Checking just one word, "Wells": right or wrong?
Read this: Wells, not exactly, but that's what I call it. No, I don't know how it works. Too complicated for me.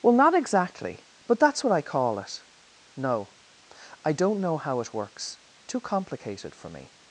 wrong